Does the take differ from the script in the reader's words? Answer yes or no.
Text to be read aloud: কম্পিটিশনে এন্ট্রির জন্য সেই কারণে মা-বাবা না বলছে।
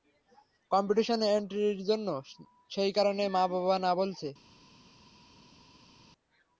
no